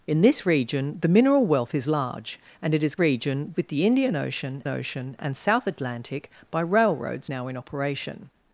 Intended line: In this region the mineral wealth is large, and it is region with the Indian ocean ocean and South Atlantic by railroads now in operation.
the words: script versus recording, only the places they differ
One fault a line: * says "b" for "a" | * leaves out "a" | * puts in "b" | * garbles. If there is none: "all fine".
all fine